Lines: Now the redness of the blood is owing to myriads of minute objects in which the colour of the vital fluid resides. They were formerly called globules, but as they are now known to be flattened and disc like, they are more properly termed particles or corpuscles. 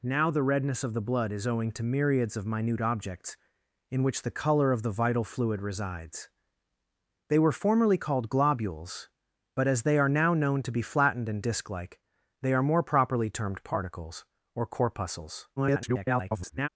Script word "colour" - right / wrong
right